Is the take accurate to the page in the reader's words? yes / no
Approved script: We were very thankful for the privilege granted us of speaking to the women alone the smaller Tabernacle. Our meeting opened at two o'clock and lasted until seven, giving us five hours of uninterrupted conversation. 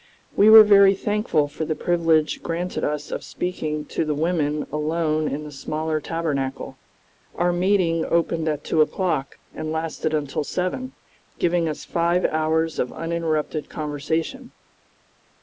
no